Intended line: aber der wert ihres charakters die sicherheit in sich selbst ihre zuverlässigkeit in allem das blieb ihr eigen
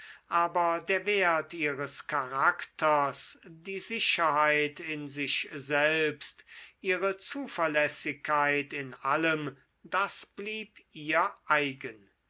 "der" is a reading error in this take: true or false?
false